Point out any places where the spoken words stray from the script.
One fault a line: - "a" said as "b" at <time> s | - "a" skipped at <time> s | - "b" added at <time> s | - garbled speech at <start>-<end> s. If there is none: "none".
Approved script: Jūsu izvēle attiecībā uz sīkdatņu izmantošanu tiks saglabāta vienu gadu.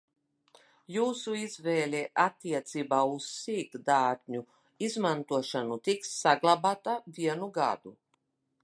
none